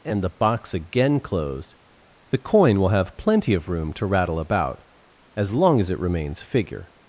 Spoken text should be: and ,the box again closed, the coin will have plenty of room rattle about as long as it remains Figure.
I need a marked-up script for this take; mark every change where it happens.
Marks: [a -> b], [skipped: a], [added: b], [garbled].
and ,the box again closed, the coin will have plenty of room [added: to] rattle about as long as it remains Figure.